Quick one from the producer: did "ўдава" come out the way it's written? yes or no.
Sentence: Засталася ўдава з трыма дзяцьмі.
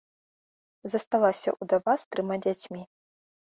yes